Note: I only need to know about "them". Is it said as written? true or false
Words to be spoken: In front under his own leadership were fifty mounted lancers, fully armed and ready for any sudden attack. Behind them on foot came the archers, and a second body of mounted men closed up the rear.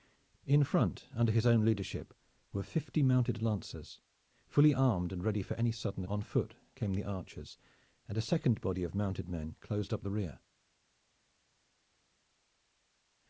false